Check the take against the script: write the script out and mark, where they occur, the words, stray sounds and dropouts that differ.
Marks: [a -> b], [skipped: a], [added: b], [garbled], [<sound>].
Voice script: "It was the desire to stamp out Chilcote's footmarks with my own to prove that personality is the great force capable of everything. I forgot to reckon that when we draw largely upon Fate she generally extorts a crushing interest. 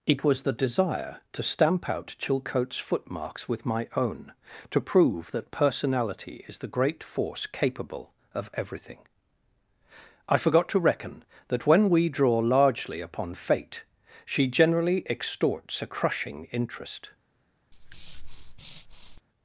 "It was the desire to stamp out Chilcote's footmarks with my own to prove that personality is the great force capable of everything. I forgot to reckon that when we draw largely upon Fate she generally extorts a crushing interest. [breath]